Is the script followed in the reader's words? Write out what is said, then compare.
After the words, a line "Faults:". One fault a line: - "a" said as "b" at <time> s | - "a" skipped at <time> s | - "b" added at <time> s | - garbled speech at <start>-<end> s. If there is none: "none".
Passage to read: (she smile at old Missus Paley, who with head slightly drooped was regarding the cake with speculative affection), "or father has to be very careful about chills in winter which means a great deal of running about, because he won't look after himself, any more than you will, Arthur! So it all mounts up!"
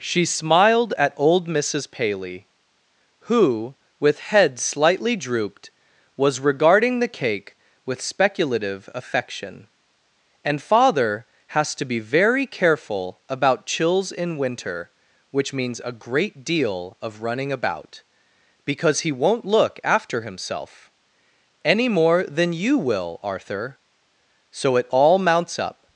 (she smiled at old Missus Paley, who with head slightly drooped was regarding the cake with speculative affection), "and father has to be very careful about chills in winter which means a great deal of running about, because he won't look after himself, any more than you will, Arthur! So it all mounts up!"
Faults:
- "smile" said as "smiled" at 0.2 s
- "or" said as "and" at 10.4 s